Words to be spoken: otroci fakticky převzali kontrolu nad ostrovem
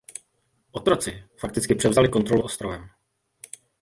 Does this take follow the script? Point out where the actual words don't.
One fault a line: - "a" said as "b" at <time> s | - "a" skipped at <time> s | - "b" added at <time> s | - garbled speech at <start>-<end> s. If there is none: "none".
- "nad" skipped at 2.4 s